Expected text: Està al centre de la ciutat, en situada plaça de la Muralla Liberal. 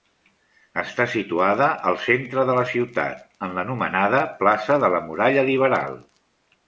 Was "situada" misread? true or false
true